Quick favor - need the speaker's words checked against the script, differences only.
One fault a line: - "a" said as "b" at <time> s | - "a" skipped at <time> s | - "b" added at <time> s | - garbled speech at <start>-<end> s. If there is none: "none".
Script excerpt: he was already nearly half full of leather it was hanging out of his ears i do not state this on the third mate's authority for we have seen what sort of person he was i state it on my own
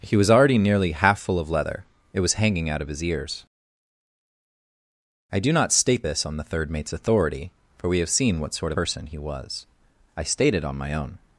none